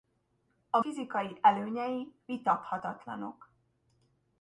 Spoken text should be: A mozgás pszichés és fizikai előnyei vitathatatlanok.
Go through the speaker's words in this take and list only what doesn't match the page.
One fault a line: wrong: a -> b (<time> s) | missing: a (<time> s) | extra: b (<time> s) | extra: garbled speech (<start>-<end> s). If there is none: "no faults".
missing: mozgás pszichés és (0.8 s)